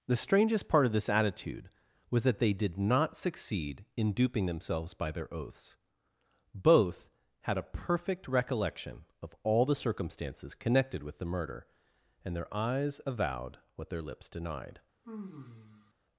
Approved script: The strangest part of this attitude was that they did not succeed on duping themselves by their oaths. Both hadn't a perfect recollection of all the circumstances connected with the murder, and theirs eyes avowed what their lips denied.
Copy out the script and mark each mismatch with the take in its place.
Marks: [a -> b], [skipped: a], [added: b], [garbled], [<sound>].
The strangest part of this attitude was that they did not succeed [on -> in] duping themselves by their oaths. Both [hadn't -> had] a perfect recollection of all the circumstances connected with the murder, and [theirs -> their] eyes avowed what their lips denied. [sigh]